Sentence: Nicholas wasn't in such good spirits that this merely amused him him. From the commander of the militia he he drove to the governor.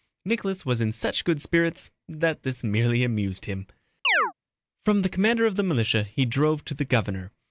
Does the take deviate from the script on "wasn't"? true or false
true